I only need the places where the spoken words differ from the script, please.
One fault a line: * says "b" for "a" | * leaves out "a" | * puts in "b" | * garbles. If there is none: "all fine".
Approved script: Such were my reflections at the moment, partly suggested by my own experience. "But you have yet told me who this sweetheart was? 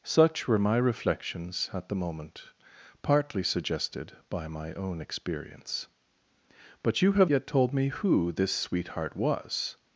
all fine